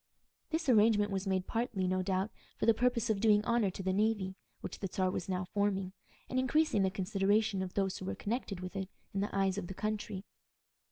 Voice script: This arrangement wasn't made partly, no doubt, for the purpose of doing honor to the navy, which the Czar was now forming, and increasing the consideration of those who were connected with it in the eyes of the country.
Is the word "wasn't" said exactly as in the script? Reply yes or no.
no